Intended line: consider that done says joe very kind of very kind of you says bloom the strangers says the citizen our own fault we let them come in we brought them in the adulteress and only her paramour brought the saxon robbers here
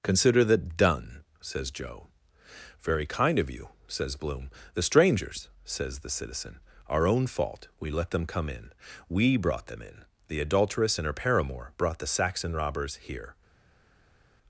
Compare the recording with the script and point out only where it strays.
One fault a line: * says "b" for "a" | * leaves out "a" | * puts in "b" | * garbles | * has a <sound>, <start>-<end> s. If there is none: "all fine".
* leaves out "very kind of"
* leaves out "only"